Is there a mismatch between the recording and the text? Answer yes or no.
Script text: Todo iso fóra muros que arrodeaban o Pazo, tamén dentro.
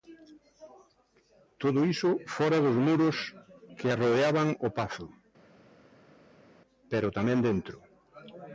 yes